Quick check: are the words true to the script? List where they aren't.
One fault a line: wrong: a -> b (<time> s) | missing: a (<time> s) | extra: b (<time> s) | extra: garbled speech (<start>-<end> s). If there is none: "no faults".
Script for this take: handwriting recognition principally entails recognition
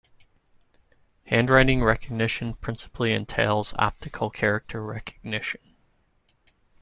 extra: optical character (3.8 s)